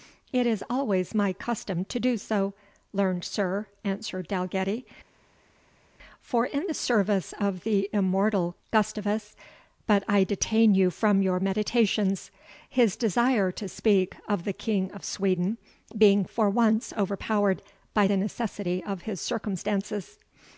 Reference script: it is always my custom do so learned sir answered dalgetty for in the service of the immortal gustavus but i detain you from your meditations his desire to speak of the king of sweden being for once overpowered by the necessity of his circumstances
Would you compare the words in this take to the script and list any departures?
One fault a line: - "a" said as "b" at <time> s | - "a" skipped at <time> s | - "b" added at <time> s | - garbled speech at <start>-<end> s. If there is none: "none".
- "to" added at 1.9 s